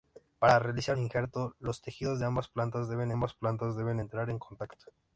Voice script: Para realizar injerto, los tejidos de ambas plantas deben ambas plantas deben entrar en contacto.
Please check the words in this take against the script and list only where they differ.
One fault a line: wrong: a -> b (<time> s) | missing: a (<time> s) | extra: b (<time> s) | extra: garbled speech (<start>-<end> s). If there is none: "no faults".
no faults